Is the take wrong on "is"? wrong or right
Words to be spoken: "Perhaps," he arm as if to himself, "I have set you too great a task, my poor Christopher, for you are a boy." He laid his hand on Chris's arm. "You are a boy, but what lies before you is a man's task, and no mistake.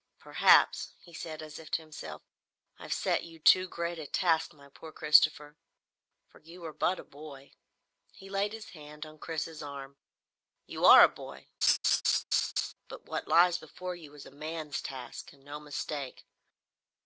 right